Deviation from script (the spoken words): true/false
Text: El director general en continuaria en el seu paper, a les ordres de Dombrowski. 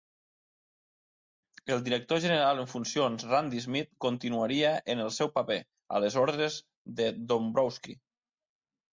true